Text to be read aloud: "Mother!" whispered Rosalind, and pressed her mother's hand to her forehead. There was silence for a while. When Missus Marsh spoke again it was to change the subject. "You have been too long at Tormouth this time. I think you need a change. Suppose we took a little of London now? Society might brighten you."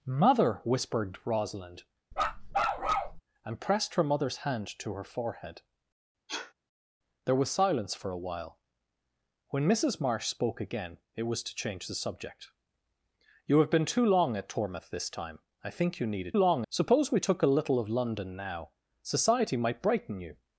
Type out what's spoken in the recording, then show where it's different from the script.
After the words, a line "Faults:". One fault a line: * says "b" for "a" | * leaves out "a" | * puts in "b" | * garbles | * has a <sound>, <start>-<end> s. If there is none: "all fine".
"Mother!" whispered Rosalind, and pressed her mother's hand to her forehead. There was silence for a while. When Missus Marsh spoke again it was to change the subject. "You have been too long at Tormouth this time. I think you need a long. Suppose we took a little of London now? Society might brighten you."
Faults:
* has a bark, 2.1-3.2 s
* has a sniff, 6.3-6.5 s
* says "long" for "change"